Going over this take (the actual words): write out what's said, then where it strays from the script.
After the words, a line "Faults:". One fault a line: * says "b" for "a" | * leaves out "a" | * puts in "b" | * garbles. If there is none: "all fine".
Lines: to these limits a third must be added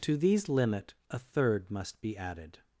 to these limit a third must be added
Faults:
* says "limit" for "limits"